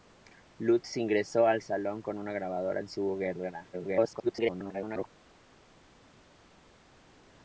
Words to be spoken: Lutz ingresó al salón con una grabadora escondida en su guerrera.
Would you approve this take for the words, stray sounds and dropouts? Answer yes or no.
no